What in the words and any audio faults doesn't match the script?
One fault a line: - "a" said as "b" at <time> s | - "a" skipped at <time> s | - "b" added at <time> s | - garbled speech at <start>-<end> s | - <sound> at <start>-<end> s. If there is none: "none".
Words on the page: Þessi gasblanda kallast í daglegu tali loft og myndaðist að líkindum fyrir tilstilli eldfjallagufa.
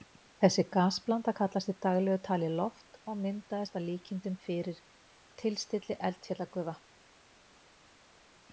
none